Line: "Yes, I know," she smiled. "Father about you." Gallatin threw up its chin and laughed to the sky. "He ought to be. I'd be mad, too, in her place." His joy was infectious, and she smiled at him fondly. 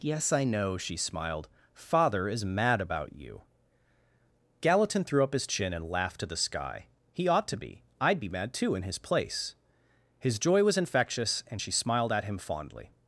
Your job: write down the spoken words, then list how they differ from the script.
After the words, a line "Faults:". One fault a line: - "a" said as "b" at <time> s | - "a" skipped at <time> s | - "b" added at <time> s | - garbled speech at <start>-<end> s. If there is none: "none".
"Yes, I know," she smiled. "Father is mad about you." Gallatin threw up his chin and laughed to the sky. "He ought to be. I'd be mad, too, in his place." His joy was infectious, and she smiled at him fondly.
Faults:
- "is mad" added at 2.3 s
- "its" said as "his" at 5.3 s
- "her" said as "his" at 8.8 s